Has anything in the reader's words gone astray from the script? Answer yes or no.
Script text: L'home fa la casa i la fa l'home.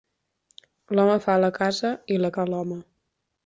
no